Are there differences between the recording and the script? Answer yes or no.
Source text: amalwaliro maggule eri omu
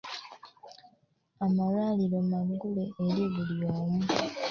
yes